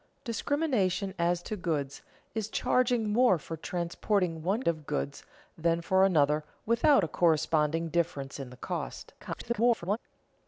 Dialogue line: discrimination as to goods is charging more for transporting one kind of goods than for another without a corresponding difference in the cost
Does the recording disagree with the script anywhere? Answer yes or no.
yes